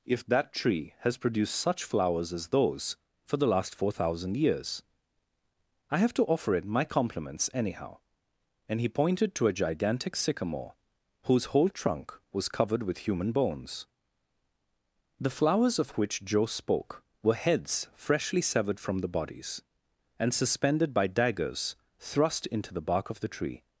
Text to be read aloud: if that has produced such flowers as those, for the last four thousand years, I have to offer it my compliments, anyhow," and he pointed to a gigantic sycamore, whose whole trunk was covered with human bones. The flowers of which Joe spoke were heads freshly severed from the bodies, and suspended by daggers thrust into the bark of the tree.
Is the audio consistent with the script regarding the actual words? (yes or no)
no